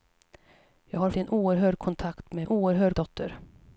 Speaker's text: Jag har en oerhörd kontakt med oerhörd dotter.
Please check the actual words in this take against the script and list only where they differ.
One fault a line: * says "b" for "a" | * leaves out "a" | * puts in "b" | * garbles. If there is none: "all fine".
all fine